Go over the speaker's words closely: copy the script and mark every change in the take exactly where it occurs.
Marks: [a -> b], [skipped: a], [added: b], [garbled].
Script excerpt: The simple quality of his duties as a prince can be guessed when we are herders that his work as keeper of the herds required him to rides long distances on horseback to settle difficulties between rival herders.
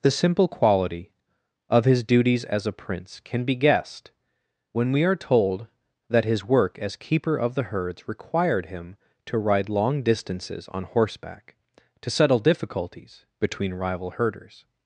The simple quality of his duties as a prince can be guessed when we are [herders -> told] that his work as keeper of the herds required him to [rides -> ride] long distances on horseback to settle difficulties between rival herders.